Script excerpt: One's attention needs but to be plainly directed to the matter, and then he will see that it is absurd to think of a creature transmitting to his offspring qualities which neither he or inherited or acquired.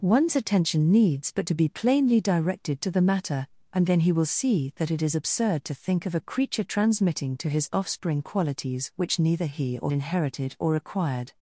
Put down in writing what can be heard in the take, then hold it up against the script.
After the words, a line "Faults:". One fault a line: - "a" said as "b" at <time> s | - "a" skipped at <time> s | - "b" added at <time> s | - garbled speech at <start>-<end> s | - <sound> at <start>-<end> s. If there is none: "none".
One's attention needs but to be plainly directed to the matter, and then he will see that it is absurd to think of a creature transmitting to his offspring qualities which neither he or inherited or acquired.
Faults:
none